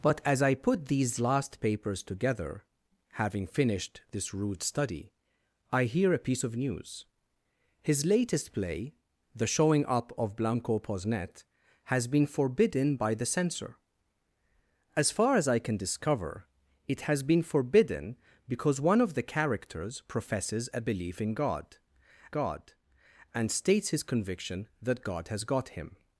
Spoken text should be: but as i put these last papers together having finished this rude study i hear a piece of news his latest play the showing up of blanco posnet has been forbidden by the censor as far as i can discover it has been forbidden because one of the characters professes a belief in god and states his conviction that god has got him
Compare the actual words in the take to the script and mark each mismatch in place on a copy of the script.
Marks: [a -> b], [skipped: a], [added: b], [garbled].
but as i put these last papers together having finished this rude study i hear a piece of news his latest play the showing up of blanco posnet has been forbidden by the censor as far as i can discover it has been forbidden because one of the characters professes a belief in god [added: god] and states his conviction that god has got him